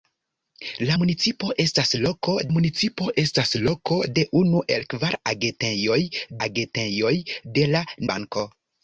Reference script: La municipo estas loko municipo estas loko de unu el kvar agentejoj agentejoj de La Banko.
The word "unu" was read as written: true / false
true